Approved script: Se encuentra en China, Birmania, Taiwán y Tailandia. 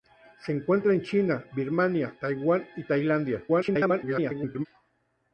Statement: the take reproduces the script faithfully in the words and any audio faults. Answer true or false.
false